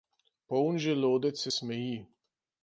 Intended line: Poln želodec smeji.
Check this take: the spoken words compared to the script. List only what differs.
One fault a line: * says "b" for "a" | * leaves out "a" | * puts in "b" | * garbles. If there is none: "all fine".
* puts in "se"